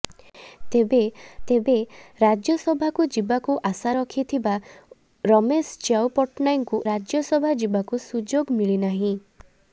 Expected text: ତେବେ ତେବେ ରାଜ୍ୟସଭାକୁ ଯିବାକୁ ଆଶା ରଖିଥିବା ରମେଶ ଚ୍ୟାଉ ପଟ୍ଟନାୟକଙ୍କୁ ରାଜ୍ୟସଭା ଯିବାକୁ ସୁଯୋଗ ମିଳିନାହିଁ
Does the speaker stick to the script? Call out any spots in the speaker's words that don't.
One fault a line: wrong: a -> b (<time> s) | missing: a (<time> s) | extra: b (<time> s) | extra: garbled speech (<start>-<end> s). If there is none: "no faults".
no faults